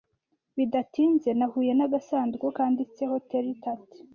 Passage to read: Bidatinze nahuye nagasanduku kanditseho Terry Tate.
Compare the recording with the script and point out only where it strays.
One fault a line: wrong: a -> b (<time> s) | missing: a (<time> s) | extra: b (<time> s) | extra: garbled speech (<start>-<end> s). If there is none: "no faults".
no faults